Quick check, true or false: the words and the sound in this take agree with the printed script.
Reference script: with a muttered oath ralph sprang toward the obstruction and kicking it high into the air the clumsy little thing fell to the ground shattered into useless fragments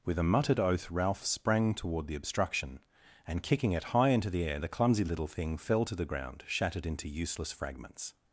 true